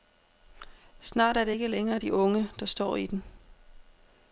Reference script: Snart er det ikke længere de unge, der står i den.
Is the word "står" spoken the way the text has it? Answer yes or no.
yes